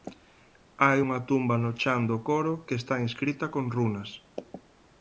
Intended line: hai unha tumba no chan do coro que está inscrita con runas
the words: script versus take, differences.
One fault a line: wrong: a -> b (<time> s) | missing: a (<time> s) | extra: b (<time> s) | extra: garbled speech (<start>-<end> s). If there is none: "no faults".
no faults